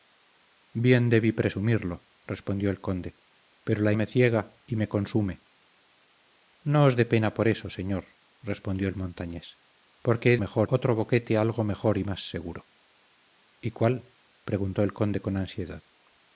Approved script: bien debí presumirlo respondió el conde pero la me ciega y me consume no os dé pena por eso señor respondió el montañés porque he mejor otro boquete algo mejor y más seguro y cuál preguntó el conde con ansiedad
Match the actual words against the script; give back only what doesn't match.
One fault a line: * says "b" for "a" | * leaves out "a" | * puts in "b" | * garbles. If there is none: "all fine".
all fine